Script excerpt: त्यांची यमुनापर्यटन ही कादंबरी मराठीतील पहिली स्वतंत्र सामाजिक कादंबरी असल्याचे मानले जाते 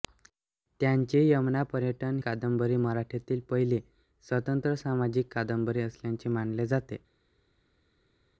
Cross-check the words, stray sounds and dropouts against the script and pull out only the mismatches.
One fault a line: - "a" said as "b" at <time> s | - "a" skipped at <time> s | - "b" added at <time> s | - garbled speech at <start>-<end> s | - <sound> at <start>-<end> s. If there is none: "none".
- "ही" skipped at 2.2 s